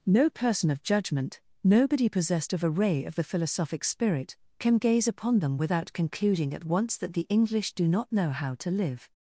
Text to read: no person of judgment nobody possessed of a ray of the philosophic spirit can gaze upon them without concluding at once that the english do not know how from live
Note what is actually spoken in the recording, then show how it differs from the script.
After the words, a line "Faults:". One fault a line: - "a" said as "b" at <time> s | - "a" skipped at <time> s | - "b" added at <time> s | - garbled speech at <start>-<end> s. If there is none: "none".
no person of judgment nobody possessed of a ray of the philosophic spirit can gaze upon them without concluding at once that the english do not know how to live
Faults:
- "from" said as "to" at 8.5 s